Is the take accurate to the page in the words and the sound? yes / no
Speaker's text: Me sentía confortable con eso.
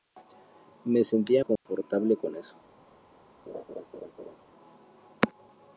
no